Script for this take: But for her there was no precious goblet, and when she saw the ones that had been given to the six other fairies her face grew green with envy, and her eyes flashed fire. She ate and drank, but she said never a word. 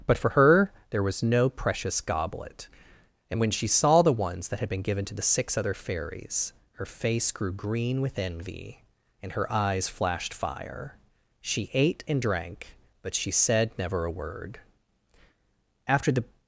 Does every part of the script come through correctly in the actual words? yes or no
no